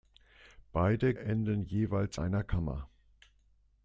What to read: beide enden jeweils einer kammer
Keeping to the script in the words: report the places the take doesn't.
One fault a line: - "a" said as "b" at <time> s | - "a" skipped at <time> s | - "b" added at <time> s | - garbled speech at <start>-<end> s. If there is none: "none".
none